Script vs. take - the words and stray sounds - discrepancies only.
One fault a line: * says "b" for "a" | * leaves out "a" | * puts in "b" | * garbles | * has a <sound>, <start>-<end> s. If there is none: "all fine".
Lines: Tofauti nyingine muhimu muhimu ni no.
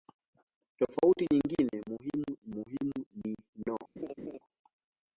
* has a laugh, 4.0-4.4 s